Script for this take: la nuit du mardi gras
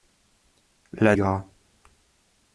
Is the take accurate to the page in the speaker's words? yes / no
no